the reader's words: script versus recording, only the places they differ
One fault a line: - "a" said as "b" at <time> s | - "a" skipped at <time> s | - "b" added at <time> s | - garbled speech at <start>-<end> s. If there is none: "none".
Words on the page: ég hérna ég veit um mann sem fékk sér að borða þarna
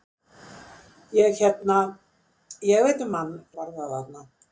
- "sem fékk sér" skipped at 3.4 s